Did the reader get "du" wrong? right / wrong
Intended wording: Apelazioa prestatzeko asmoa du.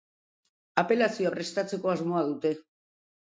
wrong